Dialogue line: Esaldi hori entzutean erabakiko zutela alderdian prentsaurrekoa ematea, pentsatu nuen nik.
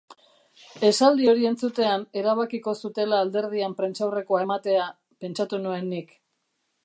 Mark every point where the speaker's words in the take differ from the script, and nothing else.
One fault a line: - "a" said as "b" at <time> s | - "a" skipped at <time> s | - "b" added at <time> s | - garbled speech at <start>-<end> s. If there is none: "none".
none